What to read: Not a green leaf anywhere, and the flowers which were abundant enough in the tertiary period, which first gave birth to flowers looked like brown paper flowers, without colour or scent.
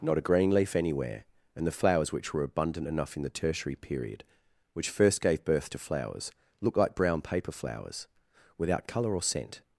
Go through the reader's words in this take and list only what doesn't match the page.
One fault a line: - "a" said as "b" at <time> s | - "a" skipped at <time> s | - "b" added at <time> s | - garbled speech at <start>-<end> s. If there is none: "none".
none